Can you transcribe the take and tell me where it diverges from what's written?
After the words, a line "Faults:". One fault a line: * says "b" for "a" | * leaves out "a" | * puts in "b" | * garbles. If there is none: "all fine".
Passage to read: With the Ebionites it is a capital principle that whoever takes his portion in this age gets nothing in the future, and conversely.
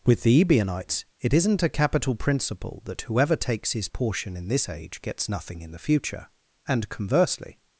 With the Ebionites it isn't a capital principle that whoever takes his portion in this age gets nothing in the future, and conversely.
Faults:
* says "isn't" for "is"